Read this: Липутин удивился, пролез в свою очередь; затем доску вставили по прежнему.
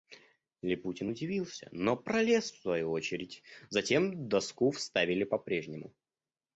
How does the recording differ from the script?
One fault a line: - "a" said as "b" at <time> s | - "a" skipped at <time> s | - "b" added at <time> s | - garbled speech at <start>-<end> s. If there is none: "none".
- "но" added at 1.7 s